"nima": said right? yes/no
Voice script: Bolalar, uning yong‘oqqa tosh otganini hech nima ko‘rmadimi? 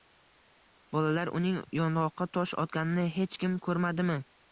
no